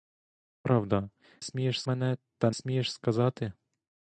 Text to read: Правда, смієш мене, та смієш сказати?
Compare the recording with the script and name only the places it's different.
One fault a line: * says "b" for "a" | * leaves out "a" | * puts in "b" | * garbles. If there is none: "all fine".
all fine